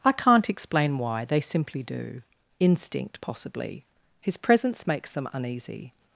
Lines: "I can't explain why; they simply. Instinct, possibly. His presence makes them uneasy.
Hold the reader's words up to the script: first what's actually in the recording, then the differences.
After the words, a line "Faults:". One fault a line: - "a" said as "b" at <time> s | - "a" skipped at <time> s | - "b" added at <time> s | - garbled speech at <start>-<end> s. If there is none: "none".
"I can't explain why; they simply do. Instinct, possibly. His presence makes them uneasy.
Faults:
- "do" added at 1.8 s